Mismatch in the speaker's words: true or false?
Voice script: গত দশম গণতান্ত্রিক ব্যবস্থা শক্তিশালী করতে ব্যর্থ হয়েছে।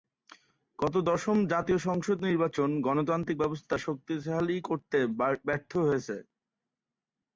true